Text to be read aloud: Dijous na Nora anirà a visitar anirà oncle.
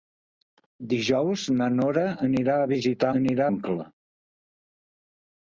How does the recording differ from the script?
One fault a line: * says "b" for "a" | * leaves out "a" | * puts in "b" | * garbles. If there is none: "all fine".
all fine